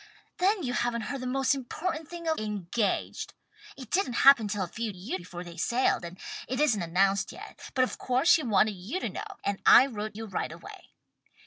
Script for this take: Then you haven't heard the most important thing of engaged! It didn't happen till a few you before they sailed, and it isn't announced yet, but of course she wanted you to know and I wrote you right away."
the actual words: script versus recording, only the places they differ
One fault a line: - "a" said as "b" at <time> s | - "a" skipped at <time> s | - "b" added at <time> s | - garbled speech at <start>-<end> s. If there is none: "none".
none